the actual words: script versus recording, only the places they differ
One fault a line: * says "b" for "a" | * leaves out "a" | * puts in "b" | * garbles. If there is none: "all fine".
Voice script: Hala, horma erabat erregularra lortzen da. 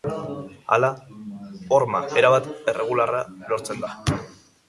all fine